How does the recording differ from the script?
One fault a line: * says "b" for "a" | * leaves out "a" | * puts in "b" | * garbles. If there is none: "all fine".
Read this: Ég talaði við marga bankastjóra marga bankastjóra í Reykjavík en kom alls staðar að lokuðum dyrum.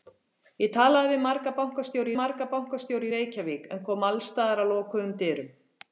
all fine